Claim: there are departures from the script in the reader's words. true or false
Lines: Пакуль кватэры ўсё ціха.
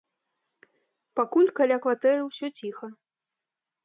true